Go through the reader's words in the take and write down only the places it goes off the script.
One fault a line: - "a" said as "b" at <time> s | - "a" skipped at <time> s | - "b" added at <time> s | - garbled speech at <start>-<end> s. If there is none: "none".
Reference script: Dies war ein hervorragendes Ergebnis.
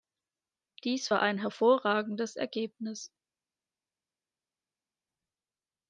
none